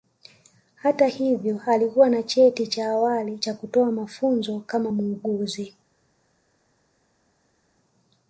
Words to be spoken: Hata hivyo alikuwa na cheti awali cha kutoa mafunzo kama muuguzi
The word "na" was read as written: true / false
true